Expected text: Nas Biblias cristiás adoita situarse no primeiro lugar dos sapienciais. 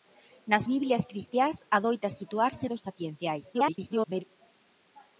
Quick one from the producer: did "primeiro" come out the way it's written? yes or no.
no